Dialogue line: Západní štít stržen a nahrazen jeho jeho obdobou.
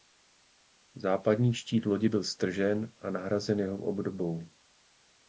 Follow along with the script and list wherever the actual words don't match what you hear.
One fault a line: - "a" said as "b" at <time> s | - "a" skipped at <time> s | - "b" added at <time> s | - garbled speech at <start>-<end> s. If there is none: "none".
- "lodi byl" added at 1.9 s
- "jeho" skipped at 3.8 s